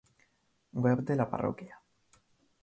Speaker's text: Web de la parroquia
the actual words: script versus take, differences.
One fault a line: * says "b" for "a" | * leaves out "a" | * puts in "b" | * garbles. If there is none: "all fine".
all fine